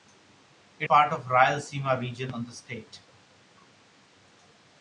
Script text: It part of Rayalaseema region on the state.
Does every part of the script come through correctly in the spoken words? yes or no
yes